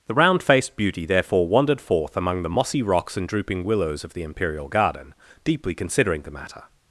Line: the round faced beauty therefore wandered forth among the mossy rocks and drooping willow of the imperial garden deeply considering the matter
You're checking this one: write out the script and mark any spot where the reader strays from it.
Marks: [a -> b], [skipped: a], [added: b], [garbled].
the round faced beauty therefore wandered forth among the mossy rocks and drooping [willow -> willows] of the imperial garden deeply considering the matter